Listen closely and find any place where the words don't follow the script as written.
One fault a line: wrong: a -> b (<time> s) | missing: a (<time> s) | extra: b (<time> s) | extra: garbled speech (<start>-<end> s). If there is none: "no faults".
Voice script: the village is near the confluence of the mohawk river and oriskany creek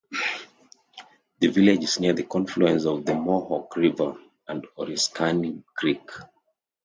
no faults